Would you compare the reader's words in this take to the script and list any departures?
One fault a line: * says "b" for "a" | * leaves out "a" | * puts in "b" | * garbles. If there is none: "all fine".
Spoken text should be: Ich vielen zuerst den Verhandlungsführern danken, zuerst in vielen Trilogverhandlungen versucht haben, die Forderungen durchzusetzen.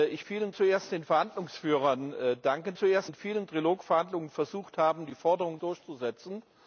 all fine